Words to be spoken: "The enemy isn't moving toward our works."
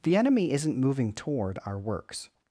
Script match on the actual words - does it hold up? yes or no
yes